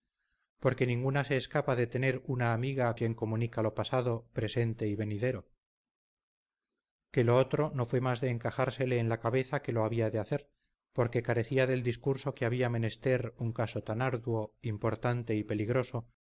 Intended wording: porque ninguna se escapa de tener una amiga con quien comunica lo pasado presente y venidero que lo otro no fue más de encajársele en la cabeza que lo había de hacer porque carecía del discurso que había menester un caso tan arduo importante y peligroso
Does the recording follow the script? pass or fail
fail